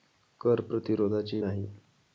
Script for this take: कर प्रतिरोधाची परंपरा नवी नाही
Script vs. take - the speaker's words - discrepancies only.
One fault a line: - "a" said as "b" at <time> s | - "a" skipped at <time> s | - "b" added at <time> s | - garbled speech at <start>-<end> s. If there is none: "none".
- "परंपरा नवी" skipped at 1.4 s